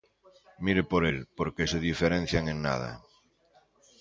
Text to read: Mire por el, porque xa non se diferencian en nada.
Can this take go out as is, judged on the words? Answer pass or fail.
fail